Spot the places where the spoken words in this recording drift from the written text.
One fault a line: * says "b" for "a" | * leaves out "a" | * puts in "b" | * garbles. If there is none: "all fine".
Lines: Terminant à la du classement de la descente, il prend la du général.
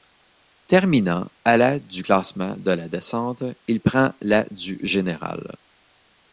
all fine